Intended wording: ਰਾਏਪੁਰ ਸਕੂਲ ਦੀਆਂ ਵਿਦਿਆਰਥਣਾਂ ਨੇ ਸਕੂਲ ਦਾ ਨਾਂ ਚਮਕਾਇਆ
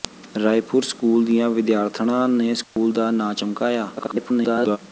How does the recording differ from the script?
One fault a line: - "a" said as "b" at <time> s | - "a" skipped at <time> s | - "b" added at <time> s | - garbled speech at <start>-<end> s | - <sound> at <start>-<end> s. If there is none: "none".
- dropout at 2.6-2.8 s
- garbled speech at 4.0-4.8 s